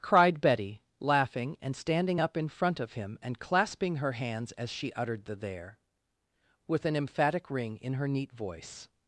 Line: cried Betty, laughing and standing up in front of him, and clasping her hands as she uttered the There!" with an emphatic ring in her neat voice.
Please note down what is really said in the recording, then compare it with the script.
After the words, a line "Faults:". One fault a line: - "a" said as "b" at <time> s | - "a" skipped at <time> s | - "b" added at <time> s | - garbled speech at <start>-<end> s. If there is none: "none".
cried Betty, laughing and standing up in front of him, and clasping her hands as she uttered the There!" with an emphatic ring in her neat voice.
Faults:
none